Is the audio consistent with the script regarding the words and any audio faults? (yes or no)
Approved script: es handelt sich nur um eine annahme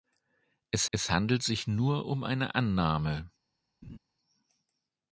no